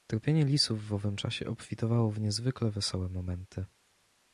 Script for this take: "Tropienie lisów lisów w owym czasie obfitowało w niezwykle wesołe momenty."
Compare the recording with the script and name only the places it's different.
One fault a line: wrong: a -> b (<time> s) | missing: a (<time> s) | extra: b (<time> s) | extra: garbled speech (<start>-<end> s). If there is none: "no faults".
missing: lisów (0.9 s)